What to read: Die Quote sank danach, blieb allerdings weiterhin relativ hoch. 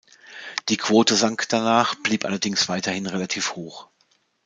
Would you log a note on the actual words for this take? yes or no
no